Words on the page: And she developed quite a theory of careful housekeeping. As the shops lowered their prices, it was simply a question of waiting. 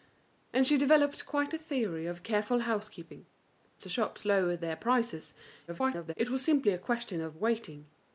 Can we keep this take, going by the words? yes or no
no